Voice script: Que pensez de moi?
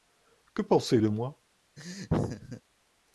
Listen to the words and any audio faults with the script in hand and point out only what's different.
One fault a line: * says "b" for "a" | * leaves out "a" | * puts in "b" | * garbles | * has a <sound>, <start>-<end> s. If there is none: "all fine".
* has a laugh, 1.8-2.6 s